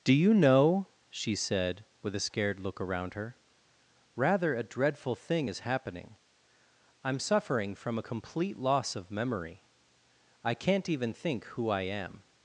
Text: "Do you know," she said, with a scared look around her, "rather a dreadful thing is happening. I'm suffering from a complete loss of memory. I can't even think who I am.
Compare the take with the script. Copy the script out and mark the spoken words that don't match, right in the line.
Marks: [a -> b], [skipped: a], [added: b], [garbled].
"Do you know," she said, with a scared look around her, "rather a dreadful thing is happening. I'm suffering from a complete loss of memory. I can't even think who I am.